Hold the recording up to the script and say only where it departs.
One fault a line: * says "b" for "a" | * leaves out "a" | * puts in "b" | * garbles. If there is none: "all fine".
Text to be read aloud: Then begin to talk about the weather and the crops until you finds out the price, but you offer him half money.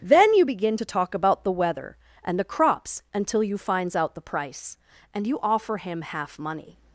* puts in "you"
* says "and" for "but"